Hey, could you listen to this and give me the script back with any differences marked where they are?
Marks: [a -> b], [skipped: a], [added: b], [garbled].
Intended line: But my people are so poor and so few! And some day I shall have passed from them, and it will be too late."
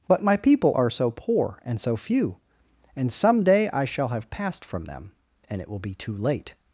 But my people are so poor and so few! And some day I shall have passed from them, and it will be too late."